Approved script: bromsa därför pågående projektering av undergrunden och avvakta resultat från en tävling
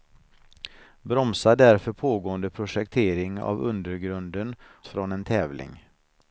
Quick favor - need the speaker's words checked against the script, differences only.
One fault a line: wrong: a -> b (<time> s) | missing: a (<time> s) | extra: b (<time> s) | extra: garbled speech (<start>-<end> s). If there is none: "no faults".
missing: och avvakta resultat (4.5 s)